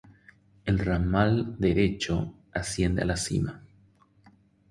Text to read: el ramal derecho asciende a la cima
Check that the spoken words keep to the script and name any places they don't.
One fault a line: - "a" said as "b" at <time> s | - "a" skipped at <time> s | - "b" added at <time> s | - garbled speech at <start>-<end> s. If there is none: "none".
none